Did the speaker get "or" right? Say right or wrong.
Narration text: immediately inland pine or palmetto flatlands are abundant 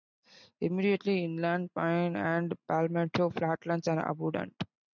wrong